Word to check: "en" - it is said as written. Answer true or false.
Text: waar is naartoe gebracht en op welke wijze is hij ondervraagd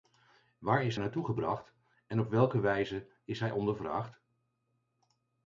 true